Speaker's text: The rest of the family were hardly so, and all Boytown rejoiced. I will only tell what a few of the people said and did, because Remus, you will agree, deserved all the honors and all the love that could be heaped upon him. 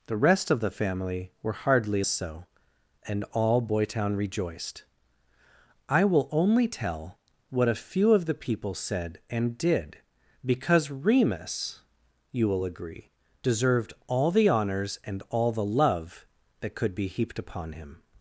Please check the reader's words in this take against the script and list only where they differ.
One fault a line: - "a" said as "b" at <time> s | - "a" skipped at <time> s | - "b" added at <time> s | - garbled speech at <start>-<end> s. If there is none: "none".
none